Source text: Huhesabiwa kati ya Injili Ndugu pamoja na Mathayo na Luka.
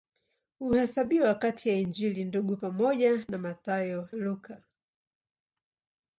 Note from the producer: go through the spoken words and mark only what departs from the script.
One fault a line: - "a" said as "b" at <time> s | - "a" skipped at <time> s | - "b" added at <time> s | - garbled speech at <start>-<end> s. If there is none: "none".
- "na" skipped at 4.1 s